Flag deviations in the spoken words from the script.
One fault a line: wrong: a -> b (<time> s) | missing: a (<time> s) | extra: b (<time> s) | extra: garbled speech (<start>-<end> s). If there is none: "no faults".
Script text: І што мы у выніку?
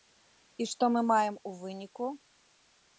extra: маем (1.1 s)